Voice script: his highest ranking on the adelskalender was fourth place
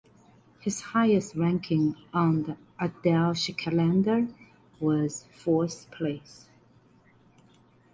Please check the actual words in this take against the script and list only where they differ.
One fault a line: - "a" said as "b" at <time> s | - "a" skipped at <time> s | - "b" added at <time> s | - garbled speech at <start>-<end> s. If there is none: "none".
none